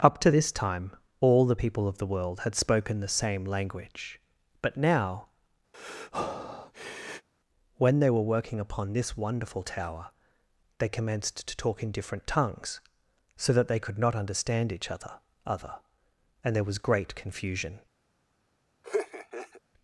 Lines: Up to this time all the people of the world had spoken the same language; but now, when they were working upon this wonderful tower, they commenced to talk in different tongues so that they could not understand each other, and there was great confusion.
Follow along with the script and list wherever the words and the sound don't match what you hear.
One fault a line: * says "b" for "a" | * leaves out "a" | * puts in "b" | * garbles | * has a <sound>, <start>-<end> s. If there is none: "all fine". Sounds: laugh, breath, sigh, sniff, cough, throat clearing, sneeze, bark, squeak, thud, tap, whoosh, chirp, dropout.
* has a breath, 5.7-7.3 s
* puts in "other"
* has a laugh, 18.8-19.6 s